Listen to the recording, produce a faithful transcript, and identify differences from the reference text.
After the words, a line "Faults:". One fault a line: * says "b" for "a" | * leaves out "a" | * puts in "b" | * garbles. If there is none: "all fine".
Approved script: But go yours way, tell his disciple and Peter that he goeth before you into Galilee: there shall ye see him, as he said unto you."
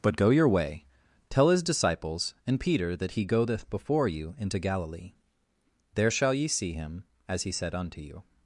But go your way, tell his disciples and Peter that he goeth before you into Galilee: there shall ye see him, as he said unto you."
Faults:
* says "your" for "yours"
* says "disciples" for "disciple"